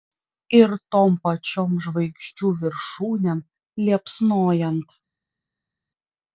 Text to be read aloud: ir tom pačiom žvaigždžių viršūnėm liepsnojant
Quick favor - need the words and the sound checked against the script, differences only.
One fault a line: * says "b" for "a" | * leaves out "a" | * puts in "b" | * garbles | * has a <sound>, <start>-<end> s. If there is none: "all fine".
all fine